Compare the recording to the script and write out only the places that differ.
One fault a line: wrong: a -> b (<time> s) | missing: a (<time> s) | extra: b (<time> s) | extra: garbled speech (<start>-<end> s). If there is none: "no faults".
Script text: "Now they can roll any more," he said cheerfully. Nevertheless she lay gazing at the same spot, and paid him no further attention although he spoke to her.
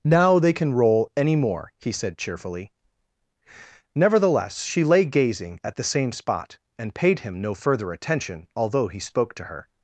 no faults